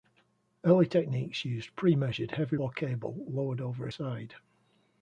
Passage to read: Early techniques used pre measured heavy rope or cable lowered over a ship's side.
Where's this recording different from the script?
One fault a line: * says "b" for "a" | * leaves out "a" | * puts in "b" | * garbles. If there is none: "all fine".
* leaves out "rope"
* leaves out "ship's"